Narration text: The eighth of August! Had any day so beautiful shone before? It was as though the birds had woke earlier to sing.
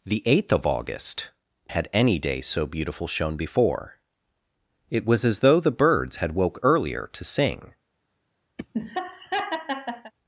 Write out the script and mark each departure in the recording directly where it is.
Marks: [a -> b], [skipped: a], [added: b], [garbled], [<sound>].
The eighth of August! Had any day so beautiful shone before? It was as though the birds had woke earlier to sing. [laugh]